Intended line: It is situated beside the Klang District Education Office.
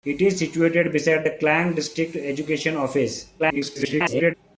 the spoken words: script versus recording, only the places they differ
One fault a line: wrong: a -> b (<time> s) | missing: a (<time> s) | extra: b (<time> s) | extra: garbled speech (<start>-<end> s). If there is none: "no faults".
extra: garbled speech (3.4-4.3 s)